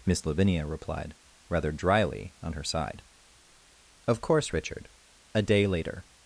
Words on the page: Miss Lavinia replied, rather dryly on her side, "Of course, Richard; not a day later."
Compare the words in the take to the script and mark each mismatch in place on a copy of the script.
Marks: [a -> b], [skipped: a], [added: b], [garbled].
Miss Lavinia replied, rather dryly on her side, "Of course, Richard; [skipped: not] a day later."